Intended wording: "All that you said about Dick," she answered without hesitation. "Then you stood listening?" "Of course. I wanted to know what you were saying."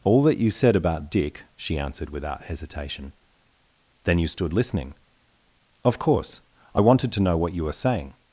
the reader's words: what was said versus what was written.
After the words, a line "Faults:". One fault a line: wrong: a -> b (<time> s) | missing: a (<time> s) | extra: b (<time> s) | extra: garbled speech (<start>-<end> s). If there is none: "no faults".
"All that you said about Dick," she answered without hesitation. "Then you stood listening?" "Of course. I wanted to know what you were saying."
Faults:
no faults